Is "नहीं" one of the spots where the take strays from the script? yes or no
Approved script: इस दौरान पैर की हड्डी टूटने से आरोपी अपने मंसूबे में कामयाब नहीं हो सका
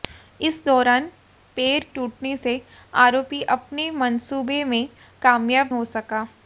yes